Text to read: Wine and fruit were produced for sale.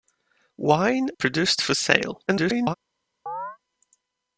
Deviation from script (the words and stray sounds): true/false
true